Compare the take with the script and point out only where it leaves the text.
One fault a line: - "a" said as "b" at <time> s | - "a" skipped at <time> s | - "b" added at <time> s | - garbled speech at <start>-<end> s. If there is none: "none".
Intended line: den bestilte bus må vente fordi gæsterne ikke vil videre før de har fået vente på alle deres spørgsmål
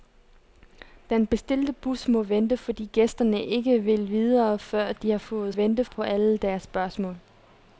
none